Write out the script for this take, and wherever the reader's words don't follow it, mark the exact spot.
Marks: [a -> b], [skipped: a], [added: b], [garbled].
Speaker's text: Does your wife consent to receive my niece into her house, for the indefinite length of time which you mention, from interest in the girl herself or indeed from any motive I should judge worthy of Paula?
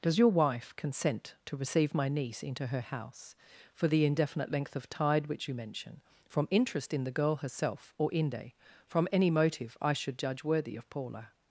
Does your wife consent to receive my niece into her house, for the indefinite length of [time -> tide] which you mention, from interest in the girl herself or [indeed -> inde] from any motive I should judge worthy of Paula?